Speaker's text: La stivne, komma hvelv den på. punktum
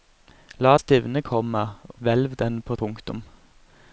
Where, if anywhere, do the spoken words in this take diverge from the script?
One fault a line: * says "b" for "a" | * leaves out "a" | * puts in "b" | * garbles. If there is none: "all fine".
all fine